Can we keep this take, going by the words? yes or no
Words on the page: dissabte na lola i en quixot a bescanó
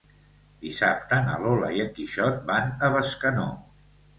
no